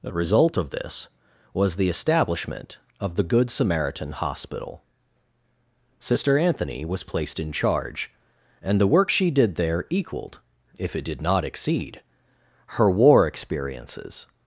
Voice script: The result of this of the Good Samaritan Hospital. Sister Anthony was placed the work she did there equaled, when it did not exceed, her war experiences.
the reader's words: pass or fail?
fail